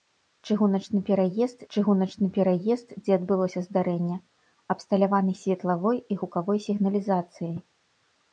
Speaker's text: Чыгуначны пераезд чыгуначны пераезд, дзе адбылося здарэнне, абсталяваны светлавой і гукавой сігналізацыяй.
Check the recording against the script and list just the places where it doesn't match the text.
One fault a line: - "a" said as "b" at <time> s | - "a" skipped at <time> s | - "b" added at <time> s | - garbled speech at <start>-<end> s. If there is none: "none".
none